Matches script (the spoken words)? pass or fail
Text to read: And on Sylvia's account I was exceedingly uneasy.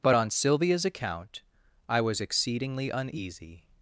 fail